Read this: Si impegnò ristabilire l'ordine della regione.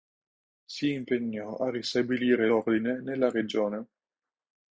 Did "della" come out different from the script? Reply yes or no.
yes